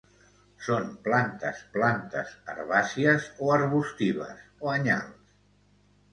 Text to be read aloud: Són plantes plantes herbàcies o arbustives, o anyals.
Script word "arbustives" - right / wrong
right